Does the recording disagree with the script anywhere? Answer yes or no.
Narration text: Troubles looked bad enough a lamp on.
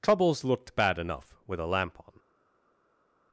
yes